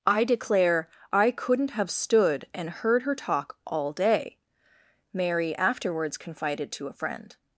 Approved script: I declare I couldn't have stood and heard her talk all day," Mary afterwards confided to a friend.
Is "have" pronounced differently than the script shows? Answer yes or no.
no